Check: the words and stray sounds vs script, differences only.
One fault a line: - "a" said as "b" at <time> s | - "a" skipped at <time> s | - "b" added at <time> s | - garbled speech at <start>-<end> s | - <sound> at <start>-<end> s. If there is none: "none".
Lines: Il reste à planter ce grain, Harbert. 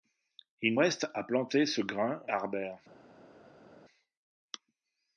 none